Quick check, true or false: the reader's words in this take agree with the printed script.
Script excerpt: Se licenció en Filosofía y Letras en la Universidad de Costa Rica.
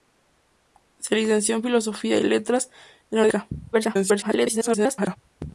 false